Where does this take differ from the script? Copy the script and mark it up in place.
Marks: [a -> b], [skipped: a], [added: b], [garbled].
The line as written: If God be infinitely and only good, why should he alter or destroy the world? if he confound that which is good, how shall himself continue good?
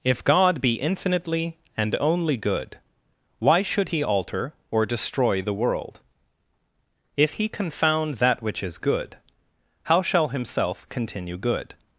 If God be infinitely and only good, why should he alter or destroy the world? if he confound that which is good, how shall himself continue good?